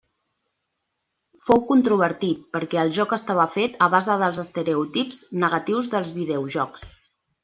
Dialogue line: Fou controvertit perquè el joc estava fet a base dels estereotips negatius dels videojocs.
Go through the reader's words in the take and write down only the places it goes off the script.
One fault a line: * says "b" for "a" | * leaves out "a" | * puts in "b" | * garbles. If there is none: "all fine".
all fine